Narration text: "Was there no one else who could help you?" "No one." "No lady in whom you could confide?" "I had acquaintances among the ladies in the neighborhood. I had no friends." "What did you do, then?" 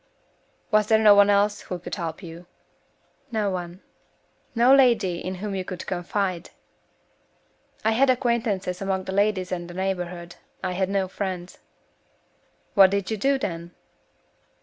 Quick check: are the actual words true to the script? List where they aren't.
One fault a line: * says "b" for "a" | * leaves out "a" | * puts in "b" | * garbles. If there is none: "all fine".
all fine